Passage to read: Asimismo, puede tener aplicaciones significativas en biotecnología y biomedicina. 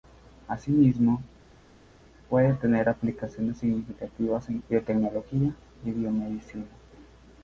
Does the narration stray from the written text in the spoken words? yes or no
no